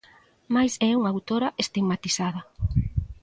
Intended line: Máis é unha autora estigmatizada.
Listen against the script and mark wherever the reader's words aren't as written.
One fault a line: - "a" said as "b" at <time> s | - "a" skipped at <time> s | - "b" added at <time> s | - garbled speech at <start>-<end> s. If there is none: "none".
none